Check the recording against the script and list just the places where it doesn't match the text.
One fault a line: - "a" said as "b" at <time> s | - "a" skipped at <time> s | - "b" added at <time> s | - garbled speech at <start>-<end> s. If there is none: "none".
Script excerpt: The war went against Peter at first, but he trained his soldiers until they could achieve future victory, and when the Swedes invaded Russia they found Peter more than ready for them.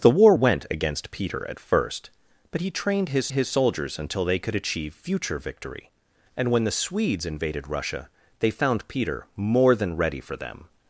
- "his" added at 3.3 s